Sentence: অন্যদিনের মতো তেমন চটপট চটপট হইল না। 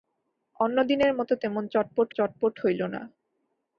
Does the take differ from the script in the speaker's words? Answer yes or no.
no